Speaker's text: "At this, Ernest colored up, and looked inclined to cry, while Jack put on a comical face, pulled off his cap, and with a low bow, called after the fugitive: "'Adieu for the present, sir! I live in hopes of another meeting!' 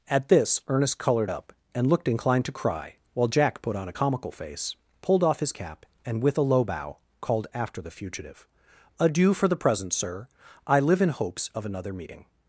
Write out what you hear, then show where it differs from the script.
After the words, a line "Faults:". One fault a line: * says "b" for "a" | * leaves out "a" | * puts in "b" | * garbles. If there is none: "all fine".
"At this, Ernest colored up, and looked inclined to cry, while Jack put on a comical face, pulled off his cap, and with a low bow, called after the fugitive: "'Adieu for the present, sir! I live in hopes of another meeting!'
Faults:
all fine